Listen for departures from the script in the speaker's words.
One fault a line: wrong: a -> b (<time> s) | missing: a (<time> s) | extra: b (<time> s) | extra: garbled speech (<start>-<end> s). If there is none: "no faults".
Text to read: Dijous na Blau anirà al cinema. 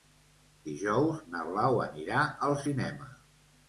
no faults